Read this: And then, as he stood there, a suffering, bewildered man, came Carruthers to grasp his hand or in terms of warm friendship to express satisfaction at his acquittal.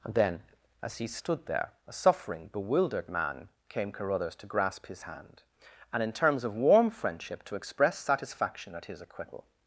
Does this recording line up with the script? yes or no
no